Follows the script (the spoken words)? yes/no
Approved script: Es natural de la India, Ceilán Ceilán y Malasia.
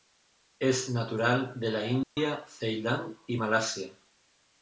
no